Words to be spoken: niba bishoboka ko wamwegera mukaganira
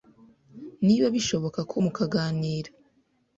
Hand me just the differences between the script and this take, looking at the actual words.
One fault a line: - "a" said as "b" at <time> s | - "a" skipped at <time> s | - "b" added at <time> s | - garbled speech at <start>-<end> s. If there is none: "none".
- "wamwegera" skipped at 1.8 s